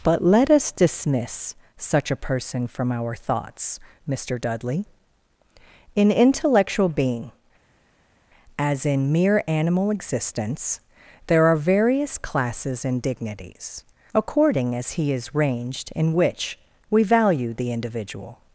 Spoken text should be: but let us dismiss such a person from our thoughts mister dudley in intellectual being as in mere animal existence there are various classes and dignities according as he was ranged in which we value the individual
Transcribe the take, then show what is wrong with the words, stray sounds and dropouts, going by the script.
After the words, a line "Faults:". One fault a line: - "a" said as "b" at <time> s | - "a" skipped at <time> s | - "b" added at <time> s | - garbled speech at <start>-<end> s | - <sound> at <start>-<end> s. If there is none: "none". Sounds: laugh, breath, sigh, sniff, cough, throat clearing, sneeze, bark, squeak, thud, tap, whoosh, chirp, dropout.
but let us dismiss such a person from our thoughts mister dudley in intellectual being as in mere animal existence there are various classes and dignities according as he is ranged in which we value the individual
Faults:
- "was" said as "is" at 15.1 s